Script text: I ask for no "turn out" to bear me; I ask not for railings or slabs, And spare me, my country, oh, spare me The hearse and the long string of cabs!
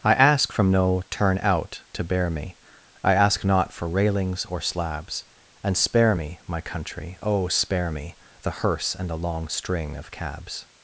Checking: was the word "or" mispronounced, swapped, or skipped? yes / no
no